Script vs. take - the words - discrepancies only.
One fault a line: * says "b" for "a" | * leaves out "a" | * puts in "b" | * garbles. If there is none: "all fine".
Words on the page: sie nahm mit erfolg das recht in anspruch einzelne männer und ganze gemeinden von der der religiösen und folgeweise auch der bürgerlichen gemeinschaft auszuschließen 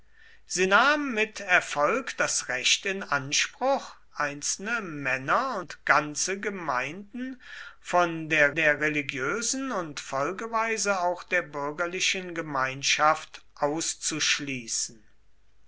all fine